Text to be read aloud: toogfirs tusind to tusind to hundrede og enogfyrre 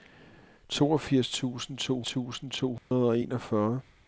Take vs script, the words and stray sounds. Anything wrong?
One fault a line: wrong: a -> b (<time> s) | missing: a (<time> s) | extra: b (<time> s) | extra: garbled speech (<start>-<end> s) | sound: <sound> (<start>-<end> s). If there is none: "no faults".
sound: dropout (2.8-2.9 s)